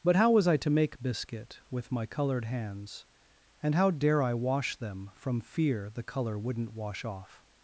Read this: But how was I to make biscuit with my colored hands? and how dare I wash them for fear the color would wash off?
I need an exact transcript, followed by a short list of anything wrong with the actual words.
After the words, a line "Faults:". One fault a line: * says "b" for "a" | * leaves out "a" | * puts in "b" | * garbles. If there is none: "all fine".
But how was I to make biscuit with my colored hands? and how dare I wash them from fear the color wouldn't wash off?
Faults:
* says "from" for "for"
* says "wouldn't" for "would"